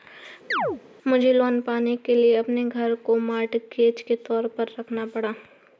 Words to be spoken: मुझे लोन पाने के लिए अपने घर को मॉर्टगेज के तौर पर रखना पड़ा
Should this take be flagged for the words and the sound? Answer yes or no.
yes